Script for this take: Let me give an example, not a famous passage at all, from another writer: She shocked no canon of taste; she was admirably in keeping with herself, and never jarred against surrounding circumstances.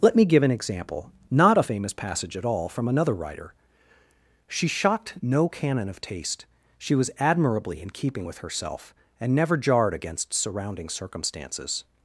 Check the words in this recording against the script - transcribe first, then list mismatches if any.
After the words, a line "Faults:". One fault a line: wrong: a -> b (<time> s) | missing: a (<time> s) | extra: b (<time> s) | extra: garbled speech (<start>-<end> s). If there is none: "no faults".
Let me give an example, not a famous passage at all, from another writer: She shocked no canon of taste; she was admirably in keeping with herself, and never jarred against surrounding circumstances.
Faults:
no faults